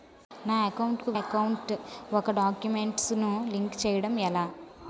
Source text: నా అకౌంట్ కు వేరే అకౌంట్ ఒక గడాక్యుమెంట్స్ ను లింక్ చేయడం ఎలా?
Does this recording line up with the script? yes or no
no